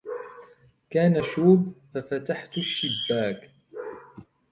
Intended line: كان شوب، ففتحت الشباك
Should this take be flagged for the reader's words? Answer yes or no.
no